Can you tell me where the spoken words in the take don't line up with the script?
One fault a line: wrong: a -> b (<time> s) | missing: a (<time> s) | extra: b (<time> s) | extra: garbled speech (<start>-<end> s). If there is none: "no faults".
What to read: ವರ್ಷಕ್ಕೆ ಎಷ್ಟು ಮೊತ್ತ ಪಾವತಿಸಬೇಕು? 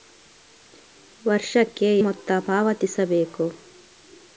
missing: ಎಷ್ಟು (2.0 s)